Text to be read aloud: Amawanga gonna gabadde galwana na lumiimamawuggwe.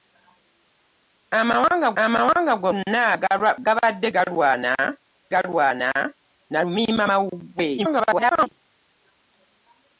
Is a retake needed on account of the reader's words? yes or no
yes